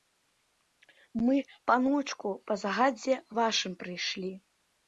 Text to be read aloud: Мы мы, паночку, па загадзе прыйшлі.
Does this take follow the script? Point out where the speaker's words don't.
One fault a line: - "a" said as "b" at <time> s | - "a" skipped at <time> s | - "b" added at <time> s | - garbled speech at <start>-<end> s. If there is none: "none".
- "мы" skipped at 1.4 s
- "вашым" added at 3.4 s